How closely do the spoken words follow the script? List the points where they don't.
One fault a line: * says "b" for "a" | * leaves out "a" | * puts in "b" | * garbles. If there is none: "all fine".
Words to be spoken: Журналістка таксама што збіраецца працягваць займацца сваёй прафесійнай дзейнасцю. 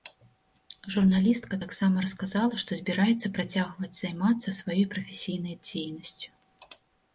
* puts in "расказала"